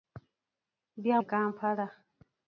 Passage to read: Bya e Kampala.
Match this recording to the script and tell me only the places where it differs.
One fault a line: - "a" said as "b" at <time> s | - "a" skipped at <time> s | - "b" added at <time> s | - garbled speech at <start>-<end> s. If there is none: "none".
none